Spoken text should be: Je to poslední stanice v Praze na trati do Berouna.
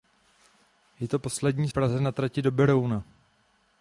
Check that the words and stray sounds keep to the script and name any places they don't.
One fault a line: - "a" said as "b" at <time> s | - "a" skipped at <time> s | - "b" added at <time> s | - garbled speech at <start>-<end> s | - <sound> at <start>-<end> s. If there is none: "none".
- "stanice" skipped at 1.7 s